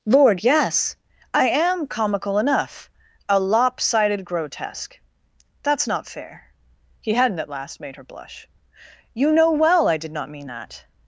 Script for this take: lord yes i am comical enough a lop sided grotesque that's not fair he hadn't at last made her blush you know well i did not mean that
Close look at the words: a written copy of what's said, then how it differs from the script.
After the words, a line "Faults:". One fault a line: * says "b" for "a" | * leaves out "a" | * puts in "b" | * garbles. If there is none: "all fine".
lord yes i am comical enough a lop sided grotesque that's not fair he hadn't at last made her blush you know well i did not mean that
Faults:
all fine